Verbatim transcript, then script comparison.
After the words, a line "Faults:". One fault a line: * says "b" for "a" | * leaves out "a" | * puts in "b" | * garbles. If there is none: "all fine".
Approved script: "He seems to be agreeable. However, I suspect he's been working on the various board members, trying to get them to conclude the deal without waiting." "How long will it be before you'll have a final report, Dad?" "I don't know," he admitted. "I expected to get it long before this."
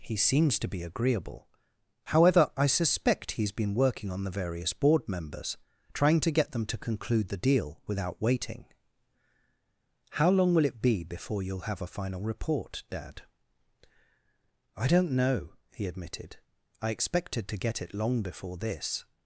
"He seems to be agreeable. However, I suspect he's been working on the various board members, trying to get them to conclude the deal without waiting." "How long will it be before you'll have a final report, Dad?" "I don't know," he admitted. "I expected to get it long before this."
Faults:
all fine